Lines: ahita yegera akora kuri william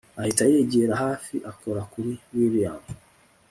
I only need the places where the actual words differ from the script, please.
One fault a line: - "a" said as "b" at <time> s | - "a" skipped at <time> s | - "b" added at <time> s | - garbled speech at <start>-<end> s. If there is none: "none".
- "hafi" added at 1.0 s